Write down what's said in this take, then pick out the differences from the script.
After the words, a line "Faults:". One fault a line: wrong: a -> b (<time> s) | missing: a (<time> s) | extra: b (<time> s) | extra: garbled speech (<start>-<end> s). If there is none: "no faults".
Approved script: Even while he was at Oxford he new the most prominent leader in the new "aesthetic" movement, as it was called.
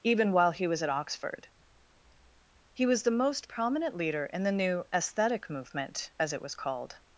Even while he was at Oxford he was the most prominent leader in the new "aesthetic" movement, as it was called.
Faults:
wrong: new -> was (2.9 s)